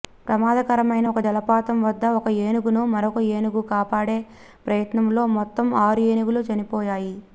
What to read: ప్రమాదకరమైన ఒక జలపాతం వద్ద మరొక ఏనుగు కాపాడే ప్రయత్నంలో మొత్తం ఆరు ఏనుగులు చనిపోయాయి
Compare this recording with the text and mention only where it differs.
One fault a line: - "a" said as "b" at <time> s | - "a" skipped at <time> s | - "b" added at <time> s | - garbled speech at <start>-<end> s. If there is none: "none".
- "ఒక ఏనుగును" added at 2.2 s